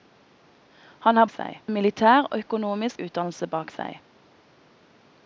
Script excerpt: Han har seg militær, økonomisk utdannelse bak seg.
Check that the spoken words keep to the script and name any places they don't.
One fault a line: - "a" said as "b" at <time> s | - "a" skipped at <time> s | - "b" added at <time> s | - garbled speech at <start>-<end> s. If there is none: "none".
none